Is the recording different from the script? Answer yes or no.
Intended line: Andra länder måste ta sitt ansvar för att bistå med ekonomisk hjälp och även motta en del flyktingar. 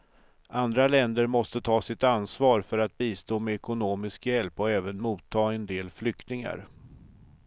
no